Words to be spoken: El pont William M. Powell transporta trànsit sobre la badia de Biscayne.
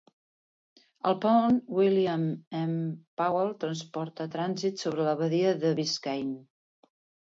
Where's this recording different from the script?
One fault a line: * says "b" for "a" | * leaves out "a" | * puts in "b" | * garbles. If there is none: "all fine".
all fine